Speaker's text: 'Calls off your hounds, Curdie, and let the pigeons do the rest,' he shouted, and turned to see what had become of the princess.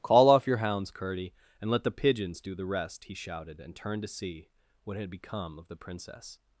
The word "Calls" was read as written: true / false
false